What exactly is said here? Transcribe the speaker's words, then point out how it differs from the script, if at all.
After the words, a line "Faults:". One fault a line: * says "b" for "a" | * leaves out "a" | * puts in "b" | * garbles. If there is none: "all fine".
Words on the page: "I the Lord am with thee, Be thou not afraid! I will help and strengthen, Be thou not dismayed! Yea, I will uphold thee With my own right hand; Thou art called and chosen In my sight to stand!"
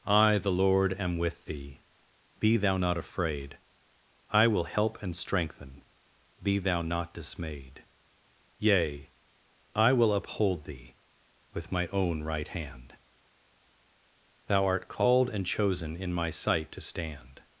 "I the Lord am with thee, Be thou not afraid! I will help and strengthen, Be thou not dismayed! Yea, I will uphold thee With my own right hand; Thou art called and chosen In my sight to stand!"
Faults:
all fine